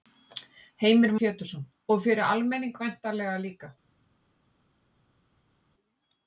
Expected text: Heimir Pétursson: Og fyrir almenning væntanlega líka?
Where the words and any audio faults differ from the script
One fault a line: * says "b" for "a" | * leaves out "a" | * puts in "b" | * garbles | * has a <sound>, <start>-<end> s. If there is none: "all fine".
all fine